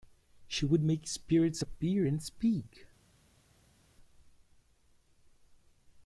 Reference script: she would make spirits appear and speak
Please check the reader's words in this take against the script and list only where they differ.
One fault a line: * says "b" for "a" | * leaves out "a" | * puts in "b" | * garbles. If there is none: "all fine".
all fine